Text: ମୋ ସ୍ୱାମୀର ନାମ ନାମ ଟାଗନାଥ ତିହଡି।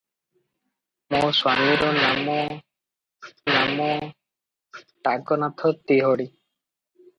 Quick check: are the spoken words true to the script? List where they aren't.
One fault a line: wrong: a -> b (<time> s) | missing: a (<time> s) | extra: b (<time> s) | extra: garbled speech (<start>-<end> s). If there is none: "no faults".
no faults